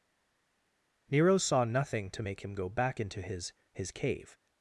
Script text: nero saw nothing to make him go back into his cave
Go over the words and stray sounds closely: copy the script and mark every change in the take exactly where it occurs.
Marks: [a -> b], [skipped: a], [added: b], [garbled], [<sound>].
nero saw nothing to make him go back into his [added: his] cave